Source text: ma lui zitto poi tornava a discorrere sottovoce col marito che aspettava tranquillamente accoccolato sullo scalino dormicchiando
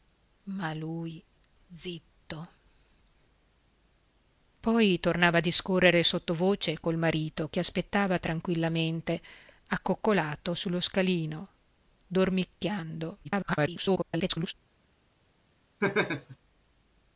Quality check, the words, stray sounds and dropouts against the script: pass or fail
fail